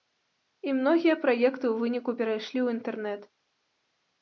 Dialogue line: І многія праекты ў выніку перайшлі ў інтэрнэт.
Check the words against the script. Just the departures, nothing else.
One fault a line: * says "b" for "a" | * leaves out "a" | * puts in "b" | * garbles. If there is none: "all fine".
all fine